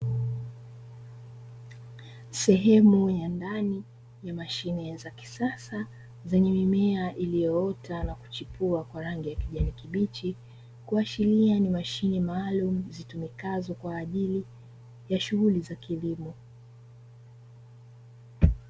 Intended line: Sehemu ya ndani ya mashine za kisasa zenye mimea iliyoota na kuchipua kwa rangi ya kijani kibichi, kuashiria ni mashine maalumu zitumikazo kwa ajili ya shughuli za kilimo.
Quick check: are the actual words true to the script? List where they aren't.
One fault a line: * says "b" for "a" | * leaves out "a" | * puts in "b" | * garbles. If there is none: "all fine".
all fine